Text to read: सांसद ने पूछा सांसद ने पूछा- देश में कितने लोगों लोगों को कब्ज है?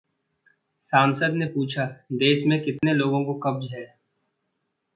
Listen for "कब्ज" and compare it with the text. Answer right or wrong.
right